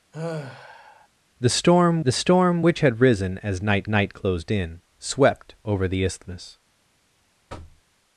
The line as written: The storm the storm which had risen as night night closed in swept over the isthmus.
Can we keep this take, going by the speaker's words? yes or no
yes